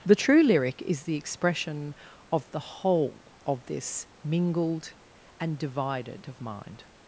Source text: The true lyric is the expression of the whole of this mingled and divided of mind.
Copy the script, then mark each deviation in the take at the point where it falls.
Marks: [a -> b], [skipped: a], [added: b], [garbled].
The true lyric is the expression of the whole of this mingled and divided of mind.